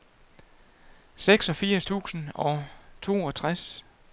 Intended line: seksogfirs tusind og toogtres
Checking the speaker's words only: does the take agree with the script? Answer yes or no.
yes